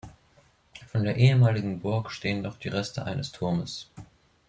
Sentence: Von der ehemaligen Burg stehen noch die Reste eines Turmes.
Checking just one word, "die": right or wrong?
right